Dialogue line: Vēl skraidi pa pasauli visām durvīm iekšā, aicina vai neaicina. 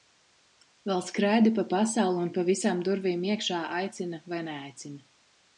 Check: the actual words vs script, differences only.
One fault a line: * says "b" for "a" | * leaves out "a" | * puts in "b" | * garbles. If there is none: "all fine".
* puts in "un pa"